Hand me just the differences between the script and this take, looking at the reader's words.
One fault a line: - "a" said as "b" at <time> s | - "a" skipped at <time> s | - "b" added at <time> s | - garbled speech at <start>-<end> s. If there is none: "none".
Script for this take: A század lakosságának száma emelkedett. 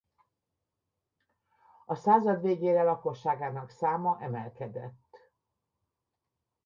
- "végére" added at 2.4 s